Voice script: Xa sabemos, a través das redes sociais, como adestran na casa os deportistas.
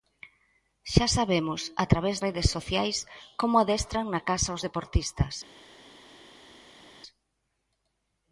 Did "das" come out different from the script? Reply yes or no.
yes